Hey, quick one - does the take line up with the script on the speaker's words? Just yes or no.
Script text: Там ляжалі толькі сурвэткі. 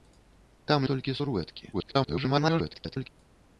no